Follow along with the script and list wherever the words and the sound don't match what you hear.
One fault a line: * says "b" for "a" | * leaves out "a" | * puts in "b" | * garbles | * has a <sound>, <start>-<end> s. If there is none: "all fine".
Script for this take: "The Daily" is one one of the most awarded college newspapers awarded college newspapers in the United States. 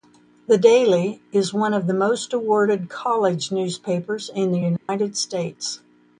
* leaves out "one"
* leaves out "awarded college newspapers"
* has a dropout, 4.8-4.9 s